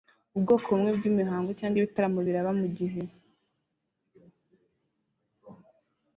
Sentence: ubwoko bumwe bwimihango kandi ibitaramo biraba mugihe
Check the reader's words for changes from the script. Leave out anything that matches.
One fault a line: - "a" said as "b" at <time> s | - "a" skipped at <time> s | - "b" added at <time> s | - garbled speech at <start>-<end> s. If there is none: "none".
- "kandi" said as "cyangwa" at 1.6 s